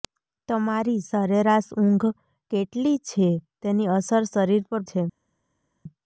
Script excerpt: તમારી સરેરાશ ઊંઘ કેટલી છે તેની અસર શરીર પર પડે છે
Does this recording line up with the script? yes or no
no